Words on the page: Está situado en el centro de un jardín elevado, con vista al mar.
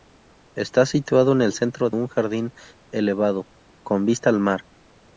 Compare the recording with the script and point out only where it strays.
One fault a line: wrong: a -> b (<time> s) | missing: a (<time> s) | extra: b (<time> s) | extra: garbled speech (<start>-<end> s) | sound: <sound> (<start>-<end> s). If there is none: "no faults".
missing: de (1.9 s)